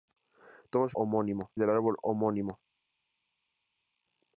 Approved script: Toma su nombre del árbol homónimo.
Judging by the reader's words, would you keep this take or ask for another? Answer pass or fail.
fail